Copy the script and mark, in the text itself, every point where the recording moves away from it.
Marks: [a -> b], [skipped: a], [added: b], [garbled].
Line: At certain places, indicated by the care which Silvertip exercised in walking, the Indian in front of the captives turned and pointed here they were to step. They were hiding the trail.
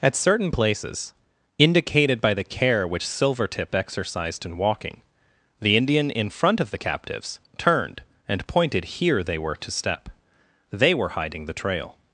At certain places, indicated by the care which Silvertip exercised in walking, the Indian in front of the captives turned and pointed here they were to step. They were hiding the trail.